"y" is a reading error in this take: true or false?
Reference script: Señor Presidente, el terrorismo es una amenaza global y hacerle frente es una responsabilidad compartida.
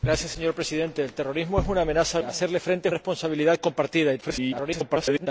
true